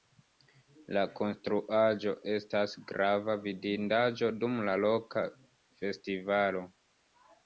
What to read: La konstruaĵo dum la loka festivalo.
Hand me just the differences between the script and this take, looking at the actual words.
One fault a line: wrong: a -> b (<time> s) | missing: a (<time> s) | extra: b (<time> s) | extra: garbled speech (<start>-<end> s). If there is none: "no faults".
extra: estas grava vidindaĵo (2.4 s)